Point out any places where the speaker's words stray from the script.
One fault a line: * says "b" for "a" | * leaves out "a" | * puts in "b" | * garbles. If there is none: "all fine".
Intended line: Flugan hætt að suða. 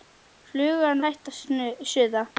all fine